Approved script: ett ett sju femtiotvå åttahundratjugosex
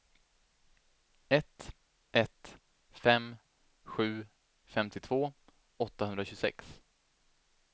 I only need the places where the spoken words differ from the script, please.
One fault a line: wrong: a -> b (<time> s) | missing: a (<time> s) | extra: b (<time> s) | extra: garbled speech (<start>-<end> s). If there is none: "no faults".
extra: fem (2.9 s)